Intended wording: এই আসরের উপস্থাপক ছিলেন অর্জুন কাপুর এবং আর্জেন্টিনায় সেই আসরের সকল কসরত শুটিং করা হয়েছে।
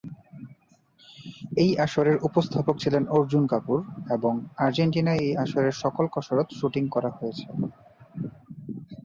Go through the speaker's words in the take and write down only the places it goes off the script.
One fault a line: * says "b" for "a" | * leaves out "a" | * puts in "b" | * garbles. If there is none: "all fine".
* says "এই" for "সেই"